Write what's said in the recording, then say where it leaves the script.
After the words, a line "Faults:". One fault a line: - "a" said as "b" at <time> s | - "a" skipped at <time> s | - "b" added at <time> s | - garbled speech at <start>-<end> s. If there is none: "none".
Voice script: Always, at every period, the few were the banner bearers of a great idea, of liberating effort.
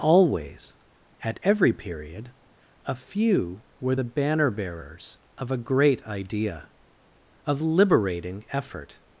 Always, at every period, a few were the banner bearers of a great idea, of liberating effort.
Faults:
- "the" said as "a" at 2.9 s